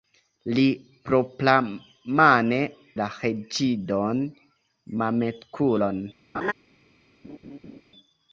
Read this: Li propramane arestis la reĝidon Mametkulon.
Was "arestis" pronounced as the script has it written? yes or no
no